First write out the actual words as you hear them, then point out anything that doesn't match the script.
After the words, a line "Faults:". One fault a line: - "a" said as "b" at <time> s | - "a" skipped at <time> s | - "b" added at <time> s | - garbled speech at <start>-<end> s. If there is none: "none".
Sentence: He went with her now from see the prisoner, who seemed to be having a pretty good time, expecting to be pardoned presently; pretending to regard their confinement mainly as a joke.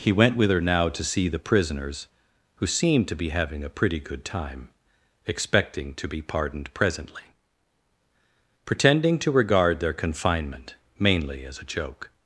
He went with her now to see the prisoners, who seemed to be having a pretty good time, expecting to be pardoned presently; pretending to regard their confinement mainly as a joke.
Faults:
- "from" said as "to" at 0.9 s
- "prisoner" said as "prisoners" at 1.4 s